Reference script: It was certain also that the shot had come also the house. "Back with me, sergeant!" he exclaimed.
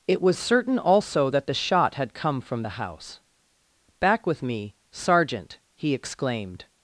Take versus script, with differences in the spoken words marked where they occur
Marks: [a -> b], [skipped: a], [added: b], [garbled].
It was certain also that the shot had come [also -> from] the house. "Back with me, sergeant!" he exclaimed.